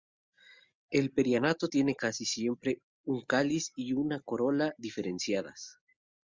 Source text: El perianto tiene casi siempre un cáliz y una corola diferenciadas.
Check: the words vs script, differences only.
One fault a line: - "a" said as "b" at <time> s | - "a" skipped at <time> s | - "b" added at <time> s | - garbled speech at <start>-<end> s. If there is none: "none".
none